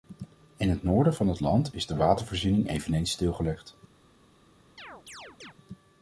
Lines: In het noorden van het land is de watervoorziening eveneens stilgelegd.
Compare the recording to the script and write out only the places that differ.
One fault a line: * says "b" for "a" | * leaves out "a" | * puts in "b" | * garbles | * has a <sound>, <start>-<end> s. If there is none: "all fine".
* has a chirp, 4.8-5.5 s